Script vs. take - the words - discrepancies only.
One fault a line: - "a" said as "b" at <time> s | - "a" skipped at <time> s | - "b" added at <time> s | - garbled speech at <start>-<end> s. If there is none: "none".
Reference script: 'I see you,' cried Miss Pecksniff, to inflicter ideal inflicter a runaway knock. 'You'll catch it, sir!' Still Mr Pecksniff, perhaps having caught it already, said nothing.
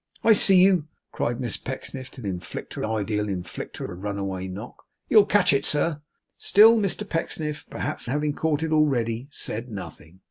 none